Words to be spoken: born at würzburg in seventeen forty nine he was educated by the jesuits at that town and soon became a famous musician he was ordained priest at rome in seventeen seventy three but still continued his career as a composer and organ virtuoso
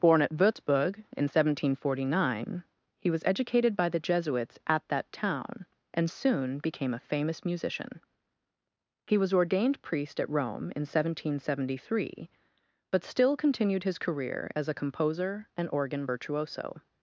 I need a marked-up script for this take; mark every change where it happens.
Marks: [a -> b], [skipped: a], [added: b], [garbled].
born at würzburg in seventeen forty nine he was educated by the jesuits at that town and soon became a famous musician he was ordained priest at rome in seventeen seventy three but still continued his career as a composer and organ virtuoso